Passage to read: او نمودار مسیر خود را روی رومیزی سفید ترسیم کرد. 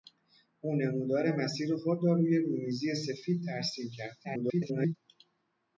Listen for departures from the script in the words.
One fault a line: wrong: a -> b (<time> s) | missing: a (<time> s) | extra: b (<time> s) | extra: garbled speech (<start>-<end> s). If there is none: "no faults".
extra: garbled speech (4.2-5.0 s)